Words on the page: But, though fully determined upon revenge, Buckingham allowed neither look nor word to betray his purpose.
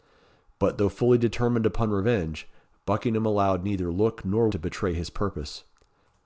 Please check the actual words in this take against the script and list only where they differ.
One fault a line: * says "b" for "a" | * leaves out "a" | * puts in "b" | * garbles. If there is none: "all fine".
* leaves out "word"